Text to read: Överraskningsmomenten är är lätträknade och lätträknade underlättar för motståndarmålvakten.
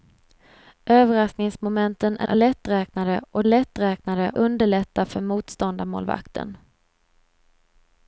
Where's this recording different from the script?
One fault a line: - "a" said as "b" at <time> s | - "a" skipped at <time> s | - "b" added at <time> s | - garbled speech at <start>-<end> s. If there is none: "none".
none